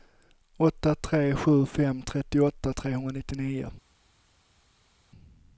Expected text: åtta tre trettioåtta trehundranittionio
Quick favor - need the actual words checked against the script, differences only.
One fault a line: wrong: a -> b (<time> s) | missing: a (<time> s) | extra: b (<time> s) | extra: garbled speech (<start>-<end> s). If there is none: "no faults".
extra: sju fem (1.4 s)